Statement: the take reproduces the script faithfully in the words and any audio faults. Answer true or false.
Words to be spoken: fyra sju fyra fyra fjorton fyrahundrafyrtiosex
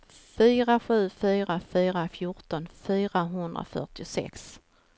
true